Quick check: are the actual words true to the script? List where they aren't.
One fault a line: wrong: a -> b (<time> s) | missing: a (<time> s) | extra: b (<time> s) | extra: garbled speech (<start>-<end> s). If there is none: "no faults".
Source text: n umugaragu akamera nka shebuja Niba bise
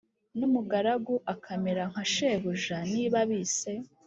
no faults